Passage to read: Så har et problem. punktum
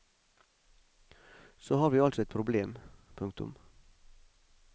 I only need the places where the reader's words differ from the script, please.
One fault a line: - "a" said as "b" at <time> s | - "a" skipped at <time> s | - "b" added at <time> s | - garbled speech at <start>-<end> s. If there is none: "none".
- "vi altså" added at 1.9 s